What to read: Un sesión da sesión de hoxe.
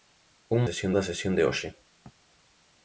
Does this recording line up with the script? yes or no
yes